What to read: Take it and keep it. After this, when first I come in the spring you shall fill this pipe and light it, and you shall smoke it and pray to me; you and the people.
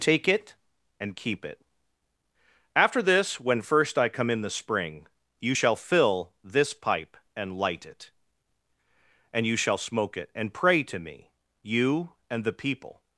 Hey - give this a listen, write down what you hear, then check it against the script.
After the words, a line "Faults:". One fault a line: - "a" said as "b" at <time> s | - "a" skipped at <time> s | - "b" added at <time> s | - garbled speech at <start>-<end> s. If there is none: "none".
Take it and keep it. After this, when first I come in the spring you shall fill this pipe and light it, and you shall smoke it and pray to me; you and the people.
Faults:
none